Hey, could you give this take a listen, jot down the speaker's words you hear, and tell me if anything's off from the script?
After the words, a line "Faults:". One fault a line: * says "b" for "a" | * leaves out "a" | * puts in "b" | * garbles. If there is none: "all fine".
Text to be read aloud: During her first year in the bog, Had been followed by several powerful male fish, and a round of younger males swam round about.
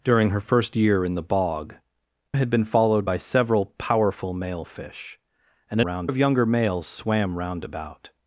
During her first year in the bog, Had been followed by several powerful male fish, and a round of younger males swam round about.
Faults:
all fine